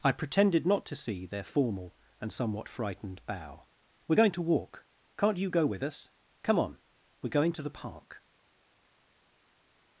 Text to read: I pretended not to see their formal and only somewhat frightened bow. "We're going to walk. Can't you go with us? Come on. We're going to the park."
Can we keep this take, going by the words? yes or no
no